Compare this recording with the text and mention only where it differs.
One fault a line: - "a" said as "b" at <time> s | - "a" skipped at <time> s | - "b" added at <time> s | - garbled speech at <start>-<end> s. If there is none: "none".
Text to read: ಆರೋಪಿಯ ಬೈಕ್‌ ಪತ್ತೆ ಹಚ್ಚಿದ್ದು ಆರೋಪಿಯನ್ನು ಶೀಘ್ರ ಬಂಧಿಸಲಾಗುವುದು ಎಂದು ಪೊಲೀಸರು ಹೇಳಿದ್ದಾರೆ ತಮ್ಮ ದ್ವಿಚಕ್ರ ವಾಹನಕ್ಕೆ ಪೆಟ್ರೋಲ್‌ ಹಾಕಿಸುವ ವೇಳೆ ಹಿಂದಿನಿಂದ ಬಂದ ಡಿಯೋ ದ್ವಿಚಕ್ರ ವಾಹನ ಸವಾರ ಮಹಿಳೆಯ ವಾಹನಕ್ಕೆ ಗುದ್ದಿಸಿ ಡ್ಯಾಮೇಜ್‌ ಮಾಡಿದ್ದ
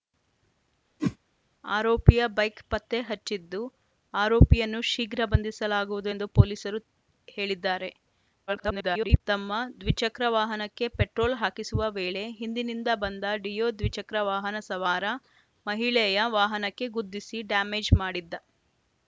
- garbled speech at 8.5-9.2 s